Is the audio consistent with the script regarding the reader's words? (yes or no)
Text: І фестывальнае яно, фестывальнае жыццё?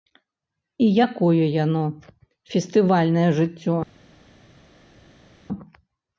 no